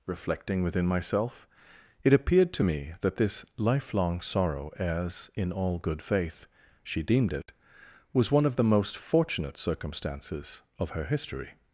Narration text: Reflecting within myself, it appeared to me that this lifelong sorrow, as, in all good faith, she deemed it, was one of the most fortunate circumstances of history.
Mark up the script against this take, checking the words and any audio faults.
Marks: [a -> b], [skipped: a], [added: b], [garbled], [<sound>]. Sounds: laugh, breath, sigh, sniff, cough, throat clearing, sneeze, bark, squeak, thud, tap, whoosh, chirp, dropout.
Reflecting within myself, it appeared to me that this lifelong sorrow, as, in all good faith, she deemed it, was one of the most fortunate circumstances of [added: her] history.